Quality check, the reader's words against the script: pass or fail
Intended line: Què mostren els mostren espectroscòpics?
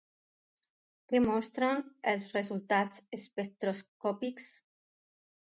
fail